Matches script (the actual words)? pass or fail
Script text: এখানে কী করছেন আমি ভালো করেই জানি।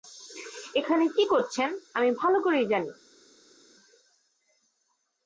pass